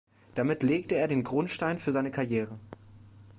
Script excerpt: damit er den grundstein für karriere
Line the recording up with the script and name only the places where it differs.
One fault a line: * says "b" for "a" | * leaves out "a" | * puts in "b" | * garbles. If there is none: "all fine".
* puts in "legte"
* puts in "seine"